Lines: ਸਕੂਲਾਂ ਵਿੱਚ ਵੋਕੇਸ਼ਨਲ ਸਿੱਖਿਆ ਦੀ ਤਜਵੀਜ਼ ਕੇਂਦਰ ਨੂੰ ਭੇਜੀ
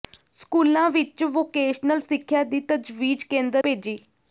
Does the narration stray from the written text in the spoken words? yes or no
yes